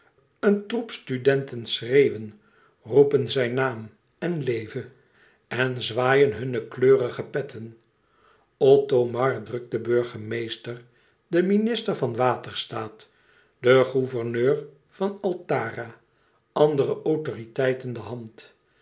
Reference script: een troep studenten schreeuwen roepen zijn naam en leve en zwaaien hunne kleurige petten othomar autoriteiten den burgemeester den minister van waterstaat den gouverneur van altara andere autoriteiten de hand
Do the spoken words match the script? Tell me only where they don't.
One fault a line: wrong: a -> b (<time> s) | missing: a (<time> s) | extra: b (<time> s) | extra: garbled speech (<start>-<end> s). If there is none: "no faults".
wrong: autoriteiten -> drukt (9.4 s)